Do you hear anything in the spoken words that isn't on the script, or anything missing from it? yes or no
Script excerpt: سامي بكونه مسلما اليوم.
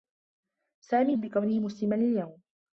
no